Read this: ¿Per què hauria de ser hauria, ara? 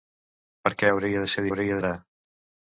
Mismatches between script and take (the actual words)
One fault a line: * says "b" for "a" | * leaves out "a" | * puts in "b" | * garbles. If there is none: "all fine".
all fine